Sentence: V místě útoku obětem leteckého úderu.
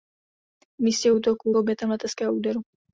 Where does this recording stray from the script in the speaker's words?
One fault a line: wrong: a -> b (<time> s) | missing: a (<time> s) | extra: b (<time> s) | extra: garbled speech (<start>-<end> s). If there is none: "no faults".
no faults